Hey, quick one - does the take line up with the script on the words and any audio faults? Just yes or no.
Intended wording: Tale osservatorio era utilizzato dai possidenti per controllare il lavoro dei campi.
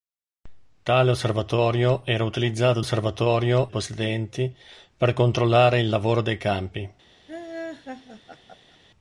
no